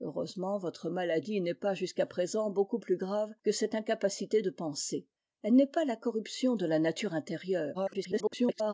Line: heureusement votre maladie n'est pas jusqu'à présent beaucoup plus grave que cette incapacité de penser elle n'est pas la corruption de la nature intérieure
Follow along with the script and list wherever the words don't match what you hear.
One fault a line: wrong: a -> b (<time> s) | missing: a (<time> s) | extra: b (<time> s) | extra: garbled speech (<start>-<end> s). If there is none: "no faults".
extra: garbled speech (7.7-8.7 s)